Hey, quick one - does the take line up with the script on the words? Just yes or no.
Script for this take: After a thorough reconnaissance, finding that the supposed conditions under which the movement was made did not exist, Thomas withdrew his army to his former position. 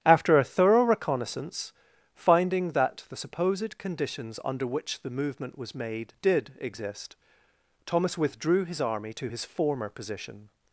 no